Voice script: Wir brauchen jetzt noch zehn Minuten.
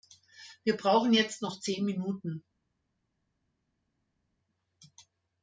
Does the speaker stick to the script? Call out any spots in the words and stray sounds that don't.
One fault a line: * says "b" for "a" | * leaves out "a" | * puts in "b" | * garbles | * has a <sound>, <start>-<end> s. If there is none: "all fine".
all fine